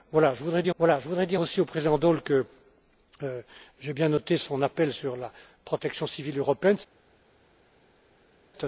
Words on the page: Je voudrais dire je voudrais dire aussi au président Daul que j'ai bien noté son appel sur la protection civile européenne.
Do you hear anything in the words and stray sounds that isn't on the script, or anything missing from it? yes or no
no